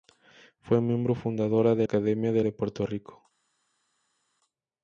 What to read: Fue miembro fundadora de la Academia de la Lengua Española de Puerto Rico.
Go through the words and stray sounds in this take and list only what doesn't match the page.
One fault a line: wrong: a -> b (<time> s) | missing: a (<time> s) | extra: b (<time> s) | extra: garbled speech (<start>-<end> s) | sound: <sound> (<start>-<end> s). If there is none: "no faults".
missing: la (1.9 s)
missing: la Lengua Española (2.5 s)